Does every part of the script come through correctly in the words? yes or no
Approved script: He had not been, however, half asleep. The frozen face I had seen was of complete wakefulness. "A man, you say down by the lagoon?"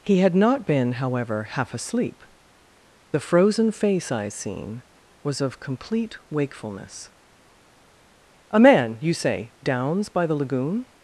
no